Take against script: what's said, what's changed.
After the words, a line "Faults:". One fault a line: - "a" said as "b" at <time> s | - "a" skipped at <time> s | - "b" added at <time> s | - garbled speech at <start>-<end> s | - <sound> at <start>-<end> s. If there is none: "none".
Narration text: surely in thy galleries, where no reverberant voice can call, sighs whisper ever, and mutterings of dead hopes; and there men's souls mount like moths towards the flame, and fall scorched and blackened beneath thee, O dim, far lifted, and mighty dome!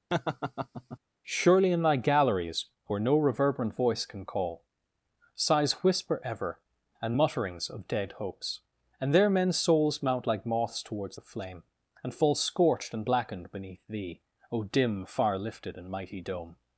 surely in thy galleries, where no reverberant voice can call, sighs whisper ever, and mutterings of dead hopes; and there men's souls mount like moths towards the flame, and fall scorched and blackened beneath thee, O dim, far lifted, and mighty dome!
Faults:
- laugh at 0.1-1.0 s